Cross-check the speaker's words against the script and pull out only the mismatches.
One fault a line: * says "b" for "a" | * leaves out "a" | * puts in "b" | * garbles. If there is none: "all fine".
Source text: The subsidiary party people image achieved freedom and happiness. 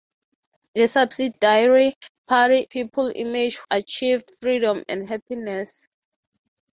all fine